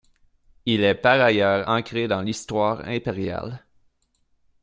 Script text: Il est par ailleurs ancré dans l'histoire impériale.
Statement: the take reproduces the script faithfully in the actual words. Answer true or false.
true